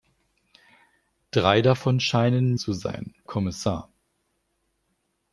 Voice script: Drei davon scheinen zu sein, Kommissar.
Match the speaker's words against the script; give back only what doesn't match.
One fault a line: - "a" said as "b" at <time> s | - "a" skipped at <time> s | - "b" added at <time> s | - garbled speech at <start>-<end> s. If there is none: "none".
none